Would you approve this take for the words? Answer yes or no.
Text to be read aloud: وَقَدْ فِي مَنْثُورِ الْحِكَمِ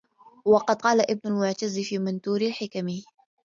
no